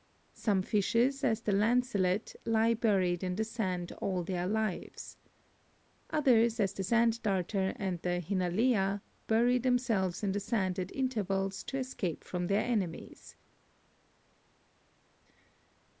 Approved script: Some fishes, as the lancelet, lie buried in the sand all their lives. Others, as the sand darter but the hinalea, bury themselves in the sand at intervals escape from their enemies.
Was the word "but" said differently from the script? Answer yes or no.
yes